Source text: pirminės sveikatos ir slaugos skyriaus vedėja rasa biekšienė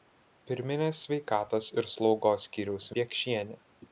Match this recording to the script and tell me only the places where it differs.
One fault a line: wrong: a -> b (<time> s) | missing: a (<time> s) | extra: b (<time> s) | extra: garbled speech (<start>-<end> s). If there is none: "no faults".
missing: vedėja rasa (2.9 s)